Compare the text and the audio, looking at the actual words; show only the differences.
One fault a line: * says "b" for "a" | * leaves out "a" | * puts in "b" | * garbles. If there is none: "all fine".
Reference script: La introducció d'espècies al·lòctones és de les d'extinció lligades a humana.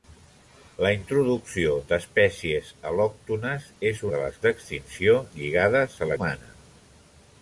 all fine